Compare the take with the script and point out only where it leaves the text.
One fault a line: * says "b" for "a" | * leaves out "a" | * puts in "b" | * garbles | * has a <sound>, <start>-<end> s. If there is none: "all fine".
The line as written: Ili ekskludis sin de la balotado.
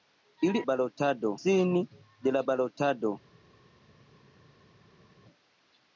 * says "balotado" for "ekskludis"